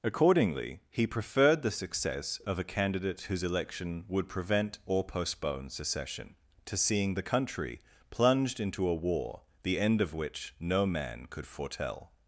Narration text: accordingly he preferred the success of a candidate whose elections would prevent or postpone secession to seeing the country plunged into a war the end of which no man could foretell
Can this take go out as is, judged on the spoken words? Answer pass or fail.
fail